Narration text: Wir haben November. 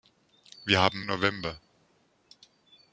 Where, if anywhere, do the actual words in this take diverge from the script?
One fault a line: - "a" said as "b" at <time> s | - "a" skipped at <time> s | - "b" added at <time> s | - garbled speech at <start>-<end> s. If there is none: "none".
none